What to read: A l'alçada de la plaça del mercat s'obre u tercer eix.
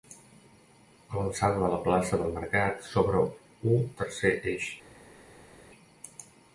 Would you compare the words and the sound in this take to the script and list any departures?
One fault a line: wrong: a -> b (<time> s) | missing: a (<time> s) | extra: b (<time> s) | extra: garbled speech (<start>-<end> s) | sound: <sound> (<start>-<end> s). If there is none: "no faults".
no faults